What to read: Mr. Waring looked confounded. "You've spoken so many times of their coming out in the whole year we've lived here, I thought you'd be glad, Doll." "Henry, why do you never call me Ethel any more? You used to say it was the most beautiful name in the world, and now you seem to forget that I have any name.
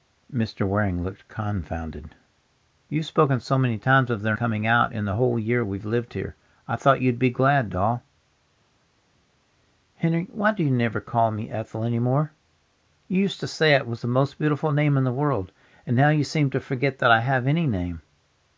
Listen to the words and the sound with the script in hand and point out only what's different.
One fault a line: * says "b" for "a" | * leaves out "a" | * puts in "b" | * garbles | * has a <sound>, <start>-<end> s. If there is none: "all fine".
all fine